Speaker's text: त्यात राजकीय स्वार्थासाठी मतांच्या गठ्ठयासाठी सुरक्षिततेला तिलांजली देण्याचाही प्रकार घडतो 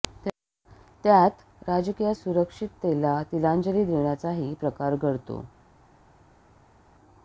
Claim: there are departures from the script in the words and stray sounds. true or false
true